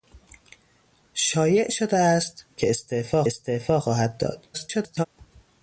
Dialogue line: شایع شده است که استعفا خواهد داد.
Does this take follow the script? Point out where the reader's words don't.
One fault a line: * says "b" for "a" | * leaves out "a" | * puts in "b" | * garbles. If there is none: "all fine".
* puts in "استعفا"
* garbles